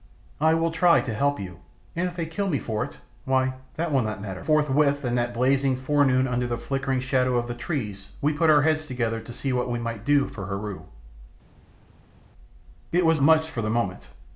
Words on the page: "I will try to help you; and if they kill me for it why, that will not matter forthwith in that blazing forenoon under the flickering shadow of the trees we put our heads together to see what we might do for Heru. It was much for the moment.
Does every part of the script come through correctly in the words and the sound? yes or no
yes